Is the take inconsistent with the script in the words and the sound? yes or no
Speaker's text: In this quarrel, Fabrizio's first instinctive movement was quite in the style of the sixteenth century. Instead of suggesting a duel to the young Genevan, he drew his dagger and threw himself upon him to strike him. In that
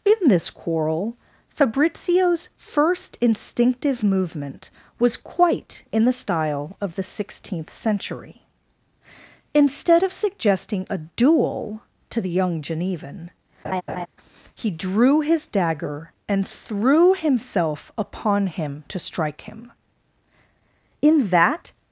yes